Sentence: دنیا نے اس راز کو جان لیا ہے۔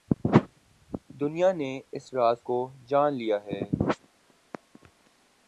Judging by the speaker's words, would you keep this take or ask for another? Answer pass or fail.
pass